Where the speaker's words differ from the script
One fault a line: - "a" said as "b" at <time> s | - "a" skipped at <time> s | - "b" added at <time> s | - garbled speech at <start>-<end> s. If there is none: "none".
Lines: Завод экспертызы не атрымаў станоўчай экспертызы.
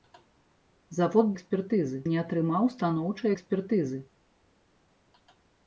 none